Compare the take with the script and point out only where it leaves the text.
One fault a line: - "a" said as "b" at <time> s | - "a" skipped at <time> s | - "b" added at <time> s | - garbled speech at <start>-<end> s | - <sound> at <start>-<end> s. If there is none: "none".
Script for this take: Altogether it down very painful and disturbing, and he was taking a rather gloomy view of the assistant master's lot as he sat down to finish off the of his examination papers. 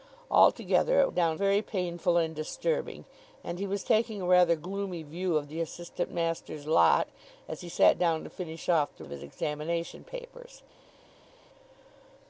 none